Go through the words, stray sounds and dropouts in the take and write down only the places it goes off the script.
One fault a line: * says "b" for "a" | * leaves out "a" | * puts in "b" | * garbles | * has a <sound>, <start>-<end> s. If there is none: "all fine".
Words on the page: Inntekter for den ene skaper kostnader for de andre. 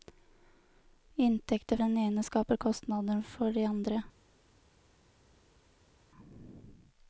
* leaves out "for"